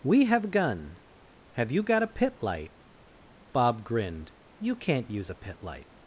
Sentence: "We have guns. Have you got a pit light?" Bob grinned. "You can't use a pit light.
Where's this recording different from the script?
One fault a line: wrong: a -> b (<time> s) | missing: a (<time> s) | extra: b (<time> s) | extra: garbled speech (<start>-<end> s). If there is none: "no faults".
wrong: guns -> gun (0.5 s)